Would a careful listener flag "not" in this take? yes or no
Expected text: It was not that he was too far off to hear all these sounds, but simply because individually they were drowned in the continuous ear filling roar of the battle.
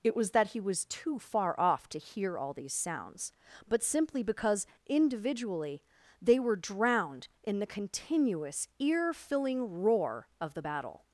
yes